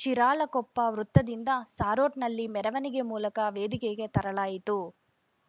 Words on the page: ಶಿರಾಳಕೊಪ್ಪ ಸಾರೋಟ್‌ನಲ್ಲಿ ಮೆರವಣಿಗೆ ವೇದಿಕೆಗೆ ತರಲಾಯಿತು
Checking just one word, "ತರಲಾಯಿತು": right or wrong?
right